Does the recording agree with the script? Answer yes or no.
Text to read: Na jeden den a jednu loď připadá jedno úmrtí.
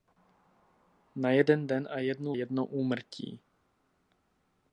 no